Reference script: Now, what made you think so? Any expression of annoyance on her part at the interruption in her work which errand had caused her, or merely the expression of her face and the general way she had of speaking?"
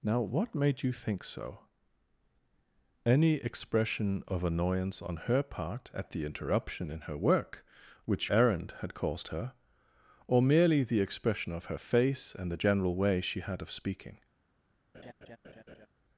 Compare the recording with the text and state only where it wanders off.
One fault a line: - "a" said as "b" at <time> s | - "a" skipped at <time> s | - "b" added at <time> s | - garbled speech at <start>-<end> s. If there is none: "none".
none